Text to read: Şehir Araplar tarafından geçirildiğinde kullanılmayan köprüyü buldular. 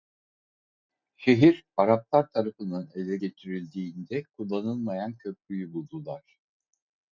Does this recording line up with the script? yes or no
no